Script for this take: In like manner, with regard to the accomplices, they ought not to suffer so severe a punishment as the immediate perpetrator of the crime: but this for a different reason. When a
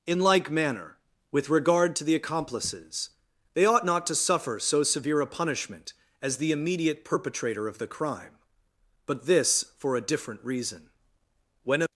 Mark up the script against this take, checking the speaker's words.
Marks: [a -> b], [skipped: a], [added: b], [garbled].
In like manner, with regard to the accomplices, they ought not to suffer so severe a punishment as the immediate perpetrator of the crime: but this for a different reason. When a